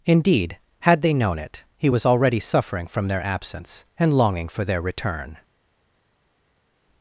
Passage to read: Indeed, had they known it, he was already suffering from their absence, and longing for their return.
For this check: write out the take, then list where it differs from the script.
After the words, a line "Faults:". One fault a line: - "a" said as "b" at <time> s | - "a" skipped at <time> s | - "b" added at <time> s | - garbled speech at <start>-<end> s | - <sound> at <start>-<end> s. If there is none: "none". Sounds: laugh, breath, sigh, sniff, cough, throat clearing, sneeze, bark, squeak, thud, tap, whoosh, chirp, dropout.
Indeed, had they known it, he was already suffering from their absence, and longing for their return.
Faults:
none